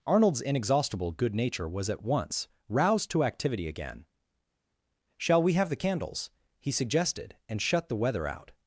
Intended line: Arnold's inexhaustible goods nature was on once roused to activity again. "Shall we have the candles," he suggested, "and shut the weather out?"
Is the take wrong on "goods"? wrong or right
wrong